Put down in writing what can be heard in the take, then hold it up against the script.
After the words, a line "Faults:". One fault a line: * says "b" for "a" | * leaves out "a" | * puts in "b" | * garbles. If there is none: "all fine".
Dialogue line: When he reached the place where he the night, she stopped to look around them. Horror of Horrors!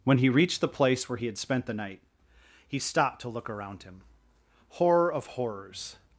When he reached the place where he had spent the night, he stopped to look around him. Horror of Horrors!
Faults:
* puts in "had spent"
* says "he" for "she"
* says "him" for "them"